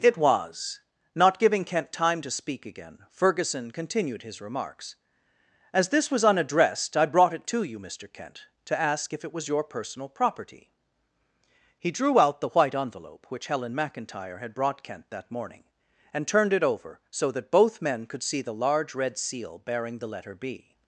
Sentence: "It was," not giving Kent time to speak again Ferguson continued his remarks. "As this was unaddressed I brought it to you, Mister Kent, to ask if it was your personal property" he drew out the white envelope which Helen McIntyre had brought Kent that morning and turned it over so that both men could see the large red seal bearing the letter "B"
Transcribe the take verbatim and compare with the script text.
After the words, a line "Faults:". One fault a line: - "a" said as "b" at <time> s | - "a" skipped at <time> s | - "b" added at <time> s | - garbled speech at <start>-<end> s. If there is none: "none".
"It was," not giving Kent time to speak again Ferguson continued his remarks. "As this was unaddressed I brought it to you, Mister Kent, to ask if it was your personal property" he drew out the white envelope which Helen McIntyre had brought Kent that morning and turned it over so that both men could see the large red seal bearing the letter "B"
Faults:
none